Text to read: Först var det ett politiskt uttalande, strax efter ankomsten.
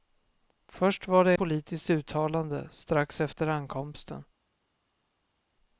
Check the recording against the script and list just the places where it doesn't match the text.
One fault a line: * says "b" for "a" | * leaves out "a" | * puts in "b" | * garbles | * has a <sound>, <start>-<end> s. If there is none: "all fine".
* leaves out "ett"